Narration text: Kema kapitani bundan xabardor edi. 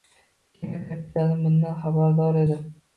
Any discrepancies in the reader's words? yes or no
no